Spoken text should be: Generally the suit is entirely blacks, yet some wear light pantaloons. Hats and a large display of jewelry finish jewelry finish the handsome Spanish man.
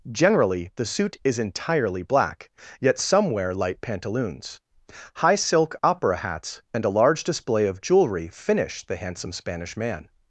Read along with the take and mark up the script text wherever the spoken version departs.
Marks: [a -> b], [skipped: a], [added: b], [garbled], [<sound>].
Generally the suit is entirely [blacks, -> black] yet some wear light pantaloons. [added: High silk opera] Hats and a large display of jewelry finish [skipped: jewelry finish] the handsome Spanish man.